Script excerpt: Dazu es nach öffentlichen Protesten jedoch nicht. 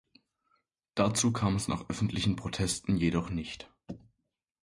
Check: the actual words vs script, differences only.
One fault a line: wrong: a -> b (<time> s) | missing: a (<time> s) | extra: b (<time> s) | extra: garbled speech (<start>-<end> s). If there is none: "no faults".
extra: kam (1.3 s)